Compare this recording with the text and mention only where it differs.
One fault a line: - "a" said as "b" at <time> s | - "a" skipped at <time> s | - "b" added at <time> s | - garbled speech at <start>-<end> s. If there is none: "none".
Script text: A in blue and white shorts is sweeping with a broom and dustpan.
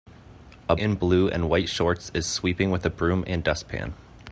none